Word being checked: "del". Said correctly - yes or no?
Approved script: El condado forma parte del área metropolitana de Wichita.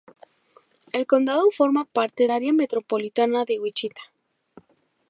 no